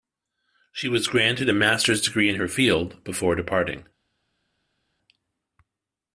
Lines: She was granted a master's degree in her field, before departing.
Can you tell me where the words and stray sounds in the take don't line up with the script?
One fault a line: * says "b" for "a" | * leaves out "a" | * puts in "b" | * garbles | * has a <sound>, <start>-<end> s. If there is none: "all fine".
all fine